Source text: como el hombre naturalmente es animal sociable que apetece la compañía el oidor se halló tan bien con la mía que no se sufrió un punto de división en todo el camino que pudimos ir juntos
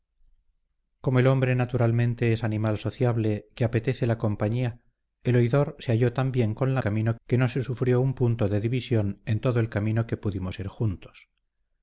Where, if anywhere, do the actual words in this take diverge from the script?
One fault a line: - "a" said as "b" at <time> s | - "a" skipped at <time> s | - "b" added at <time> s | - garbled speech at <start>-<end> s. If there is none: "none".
- "mía" said as "camino" at 6.8 s